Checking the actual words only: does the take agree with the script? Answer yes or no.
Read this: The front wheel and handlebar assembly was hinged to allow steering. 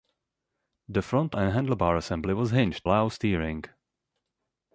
no